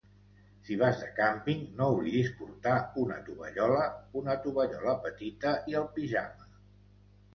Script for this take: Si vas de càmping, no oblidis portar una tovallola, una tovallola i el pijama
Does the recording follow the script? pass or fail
fail